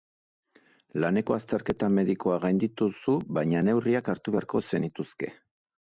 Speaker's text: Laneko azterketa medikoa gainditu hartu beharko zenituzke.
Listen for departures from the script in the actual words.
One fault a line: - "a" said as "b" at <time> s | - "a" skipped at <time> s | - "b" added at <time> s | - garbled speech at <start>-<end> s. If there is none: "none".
- "duzu baina neurriak" added at 3.0 s